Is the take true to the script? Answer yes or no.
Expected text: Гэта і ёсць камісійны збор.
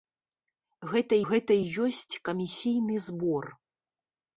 no